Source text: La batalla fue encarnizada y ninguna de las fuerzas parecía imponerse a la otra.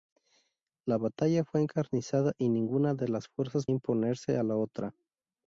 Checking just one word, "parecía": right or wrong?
wrong